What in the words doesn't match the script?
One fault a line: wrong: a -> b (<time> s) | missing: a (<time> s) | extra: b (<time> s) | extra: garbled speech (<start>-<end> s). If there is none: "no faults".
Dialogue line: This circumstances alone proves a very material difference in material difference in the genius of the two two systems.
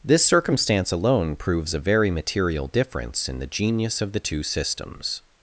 wrong: circumstances -> circumstance (0.2 s)
missing: material difference in (3.4 s)
missing: two (4.4 s)